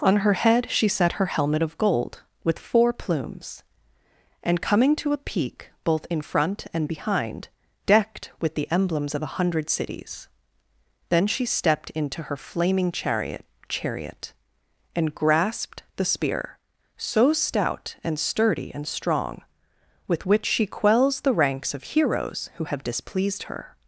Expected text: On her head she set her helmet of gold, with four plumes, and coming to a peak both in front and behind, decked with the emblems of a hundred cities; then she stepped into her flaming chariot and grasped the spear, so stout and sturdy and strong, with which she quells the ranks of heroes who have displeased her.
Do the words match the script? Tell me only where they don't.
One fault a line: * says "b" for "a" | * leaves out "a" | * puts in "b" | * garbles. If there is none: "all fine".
* puts in "chariot"